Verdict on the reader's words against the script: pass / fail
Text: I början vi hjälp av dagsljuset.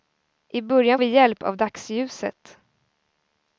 pass